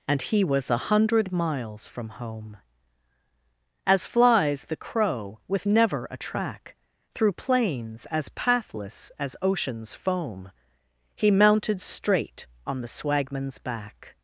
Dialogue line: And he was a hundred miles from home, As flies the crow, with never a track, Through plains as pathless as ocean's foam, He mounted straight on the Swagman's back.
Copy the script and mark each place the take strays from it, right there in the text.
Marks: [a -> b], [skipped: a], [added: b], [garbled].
And he was a hundred miles from home, As flies the crow, with never a track, Through plains as pathless as ocean's foam, He mounted straight on the Swagman's back.